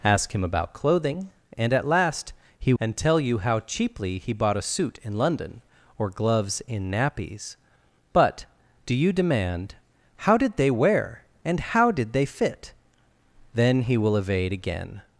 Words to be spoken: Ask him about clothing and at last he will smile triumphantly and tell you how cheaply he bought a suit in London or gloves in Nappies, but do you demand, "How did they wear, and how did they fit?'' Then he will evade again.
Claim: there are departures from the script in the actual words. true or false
true